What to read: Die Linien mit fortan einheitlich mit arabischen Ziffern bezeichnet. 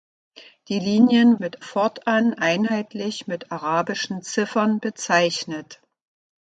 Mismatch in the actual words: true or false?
false